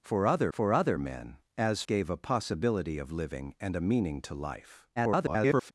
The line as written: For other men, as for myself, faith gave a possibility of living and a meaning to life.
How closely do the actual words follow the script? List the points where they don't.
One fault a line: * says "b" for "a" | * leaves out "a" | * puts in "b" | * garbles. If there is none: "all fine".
* puts in "for other"
* leaves out "for myself faith"
* garbles